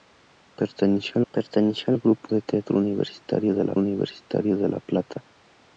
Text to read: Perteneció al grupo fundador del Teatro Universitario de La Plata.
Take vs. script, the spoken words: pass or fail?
fail